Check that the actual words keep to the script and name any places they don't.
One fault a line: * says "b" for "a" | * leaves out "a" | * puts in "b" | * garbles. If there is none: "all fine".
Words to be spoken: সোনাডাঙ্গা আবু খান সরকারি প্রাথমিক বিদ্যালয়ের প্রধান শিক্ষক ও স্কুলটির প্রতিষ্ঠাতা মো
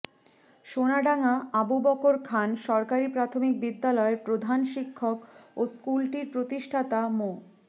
* puts in "বকর"